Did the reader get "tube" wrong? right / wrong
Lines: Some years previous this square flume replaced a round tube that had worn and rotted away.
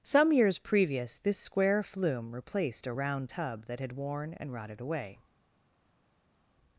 wrong